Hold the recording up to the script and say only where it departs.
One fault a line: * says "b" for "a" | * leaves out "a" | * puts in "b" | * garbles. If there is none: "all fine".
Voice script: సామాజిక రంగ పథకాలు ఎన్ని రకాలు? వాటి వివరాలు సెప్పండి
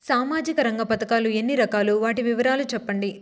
all fine